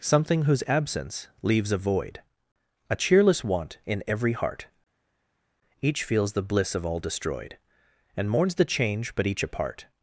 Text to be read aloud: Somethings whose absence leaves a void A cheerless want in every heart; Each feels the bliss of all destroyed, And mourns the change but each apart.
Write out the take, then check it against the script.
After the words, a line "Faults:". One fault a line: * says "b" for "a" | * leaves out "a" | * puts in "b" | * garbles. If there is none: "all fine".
Something whose absence leaves a void A cheerless want in every heart; Each feels the bliss of all destroyed, And mourns the change but each apart.
Faults:
* says "Something" for "Somethings"